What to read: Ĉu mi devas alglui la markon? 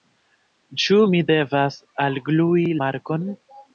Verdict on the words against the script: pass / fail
fail